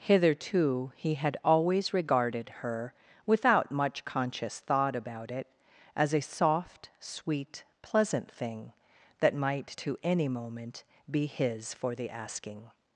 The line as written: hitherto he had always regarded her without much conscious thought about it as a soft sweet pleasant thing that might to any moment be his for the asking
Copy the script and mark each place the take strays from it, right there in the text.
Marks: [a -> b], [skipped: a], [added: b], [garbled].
hitherto he had always regarded her without much conscious thought about it as a soft sweet pleasant thing that might to any moment be his for the asking